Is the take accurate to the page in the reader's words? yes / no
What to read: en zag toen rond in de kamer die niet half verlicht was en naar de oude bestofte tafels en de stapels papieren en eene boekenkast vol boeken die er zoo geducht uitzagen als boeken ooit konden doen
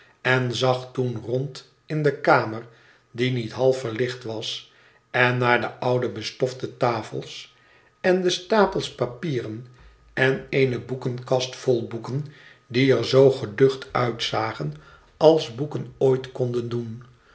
yes